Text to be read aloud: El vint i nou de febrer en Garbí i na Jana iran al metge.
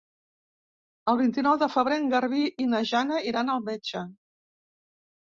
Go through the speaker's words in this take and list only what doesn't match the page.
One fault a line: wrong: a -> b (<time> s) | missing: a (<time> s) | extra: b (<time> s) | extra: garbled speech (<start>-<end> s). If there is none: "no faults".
no faults